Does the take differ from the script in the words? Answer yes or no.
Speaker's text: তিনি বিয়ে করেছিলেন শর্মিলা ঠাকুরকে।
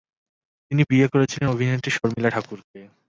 yes